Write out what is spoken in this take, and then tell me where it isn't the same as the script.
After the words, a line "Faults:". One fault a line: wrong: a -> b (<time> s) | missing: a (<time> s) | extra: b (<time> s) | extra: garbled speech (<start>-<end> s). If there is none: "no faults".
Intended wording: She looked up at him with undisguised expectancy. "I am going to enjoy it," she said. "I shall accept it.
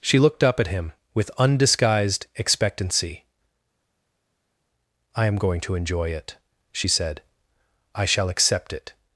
She looked up at him with undisguised expectancy. "I am going to enjoy it," she said. "I shall accept it.
Faults:
no faults